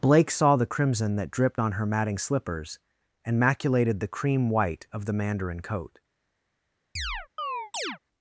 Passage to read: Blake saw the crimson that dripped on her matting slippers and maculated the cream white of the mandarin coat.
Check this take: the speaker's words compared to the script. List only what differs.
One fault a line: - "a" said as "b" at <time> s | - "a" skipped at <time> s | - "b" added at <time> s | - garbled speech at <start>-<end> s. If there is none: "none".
none